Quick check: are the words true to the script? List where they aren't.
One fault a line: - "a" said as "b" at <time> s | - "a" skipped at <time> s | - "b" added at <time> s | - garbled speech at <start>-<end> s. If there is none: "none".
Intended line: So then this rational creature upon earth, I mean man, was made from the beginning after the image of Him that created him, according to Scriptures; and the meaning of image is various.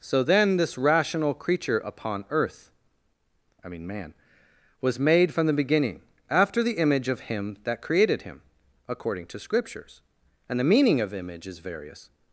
none